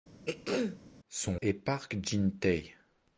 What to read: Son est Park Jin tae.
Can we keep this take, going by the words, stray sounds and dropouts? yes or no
no